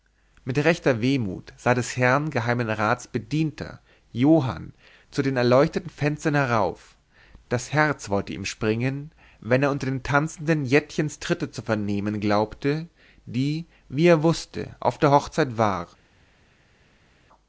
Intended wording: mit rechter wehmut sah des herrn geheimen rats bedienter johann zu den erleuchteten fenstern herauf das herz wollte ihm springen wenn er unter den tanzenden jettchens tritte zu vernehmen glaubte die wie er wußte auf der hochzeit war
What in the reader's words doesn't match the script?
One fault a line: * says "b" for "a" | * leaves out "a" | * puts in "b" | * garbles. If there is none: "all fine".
all fine